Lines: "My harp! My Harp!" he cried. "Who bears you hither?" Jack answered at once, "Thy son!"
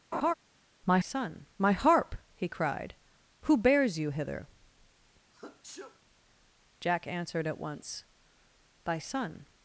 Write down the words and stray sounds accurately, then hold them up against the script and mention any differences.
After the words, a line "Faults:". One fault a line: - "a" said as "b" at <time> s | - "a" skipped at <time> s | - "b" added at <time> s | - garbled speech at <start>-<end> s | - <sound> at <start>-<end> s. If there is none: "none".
"My son! My Harp!" he cried. "Who bears you hither?" Jack answered at once, "Thy son!"
Faults:
- laugh at 0.1-0.3 s
- "harp" said as "son" at 1.0 s
- sneeze at 5.3-6.0 s